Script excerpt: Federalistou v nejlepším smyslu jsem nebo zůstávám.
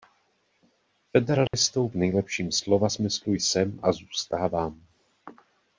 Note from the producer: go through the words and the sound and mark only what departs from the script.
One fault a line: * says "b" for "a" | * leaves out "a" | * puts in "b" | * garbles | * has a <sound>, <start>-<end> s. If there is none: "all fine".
* has a dropout, 1.5-1.5 s
* puts in "slova"
* says "a" for "nebo"